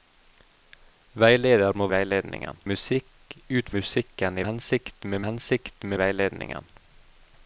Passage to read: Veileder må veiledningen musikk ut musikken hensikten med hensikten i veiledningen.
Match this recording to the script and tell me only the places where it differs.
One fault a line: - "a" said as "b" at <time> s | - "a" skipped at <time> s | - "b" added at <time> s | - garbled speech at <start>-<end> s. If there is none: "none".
none